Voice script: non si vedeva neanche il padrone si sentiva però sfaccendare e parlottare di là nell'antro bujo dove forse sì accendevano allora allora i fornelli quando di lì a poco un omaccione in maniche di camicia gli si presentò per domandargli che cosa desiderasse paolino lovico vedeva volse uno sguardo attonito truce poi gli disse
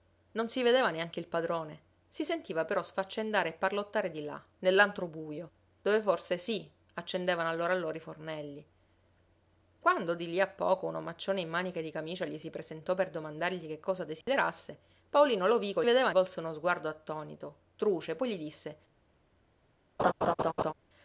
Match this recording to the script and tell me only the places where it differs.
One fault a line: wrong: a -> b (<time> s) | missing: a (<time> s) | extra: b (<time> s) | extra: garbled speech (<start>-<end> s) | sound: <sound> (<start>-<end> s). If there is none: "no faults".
sound: dropout (14.2-14.3 s)
sound: laugh (20.0-20.7 s)